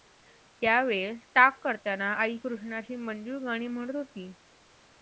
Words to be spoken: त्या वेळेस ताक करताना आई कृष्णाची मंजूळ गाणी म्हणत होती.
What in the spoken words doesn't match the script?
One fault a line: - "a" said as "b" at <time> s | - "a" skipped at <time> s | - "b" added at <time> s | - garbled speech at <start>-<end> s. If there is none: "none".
none